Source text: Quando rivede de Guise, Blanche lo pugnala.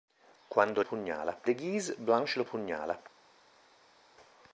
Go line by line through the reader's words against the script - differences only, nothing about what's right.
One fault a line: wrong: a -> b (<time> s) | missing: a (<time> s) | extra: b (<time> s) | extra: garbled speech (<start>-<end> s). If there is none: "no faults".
wrong: rivede -> pugnala (0.8 s)